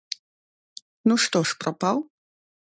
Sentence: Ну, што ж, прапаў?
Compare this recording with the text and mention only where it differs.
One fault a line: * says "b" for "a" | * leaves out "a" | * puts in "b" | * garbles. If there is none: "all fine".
all fine